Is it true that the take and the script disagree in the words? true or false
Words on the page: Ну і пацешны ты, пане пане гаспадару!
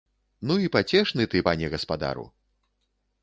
true